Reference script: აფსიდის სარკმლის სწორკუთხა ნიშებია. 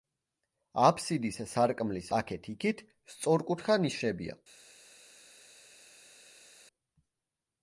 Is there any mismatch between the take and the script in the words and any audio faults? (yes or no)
yes